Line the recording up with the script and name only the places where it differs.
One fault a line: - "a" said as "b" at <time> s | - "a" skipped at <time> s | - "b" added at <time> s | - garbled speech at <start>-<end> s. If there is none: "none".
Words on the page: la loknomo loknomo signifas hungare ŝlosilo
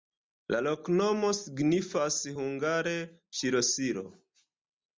- "loknomo" skipped at 1.3 s